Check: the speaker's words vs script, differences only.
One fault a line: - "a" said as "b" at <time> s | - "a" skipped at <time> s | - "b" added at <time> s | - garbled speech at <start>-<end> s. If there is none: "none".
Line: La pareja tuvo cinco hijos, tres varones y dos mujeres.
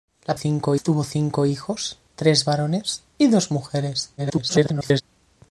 - "pareja" said as "cinco" at 0.3 s
- garbled speech at 4.2-5.0 s